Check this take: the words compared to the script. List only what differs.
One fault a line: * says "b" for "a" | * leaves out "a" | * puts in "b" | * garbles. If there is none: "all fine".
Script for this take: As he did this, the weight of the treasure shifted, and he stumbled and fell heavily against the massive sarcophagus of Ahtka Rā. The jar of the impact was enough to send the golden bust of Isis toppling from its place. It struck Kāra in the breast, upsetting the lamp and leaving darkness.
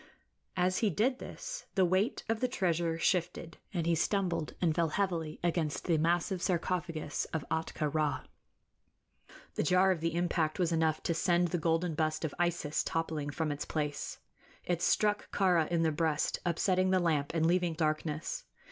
all fine